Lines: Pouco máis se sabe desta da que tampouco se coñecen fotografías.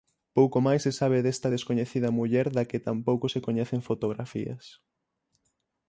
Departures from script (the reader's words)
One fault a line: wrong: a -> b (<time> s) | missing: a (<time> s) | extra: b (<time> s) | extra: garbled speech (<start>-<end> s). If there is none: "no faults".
extra: descoñecida muller (1.6 s)